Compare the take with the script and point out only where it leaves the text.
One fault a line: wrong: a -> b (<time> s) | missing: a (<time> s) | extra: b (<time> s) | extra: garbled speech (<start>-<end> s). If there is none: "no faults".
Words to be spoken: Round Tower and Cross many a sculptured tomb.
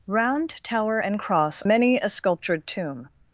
no faults